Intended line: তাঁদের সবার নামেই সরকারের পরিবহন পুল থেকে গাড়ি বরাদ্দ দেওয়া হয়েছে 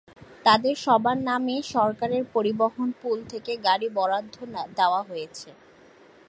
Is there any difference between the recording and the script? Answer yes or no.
no